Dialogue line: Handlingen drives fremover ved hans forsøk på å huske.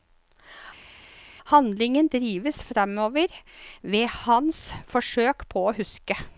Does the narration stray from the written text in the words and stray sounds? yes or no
no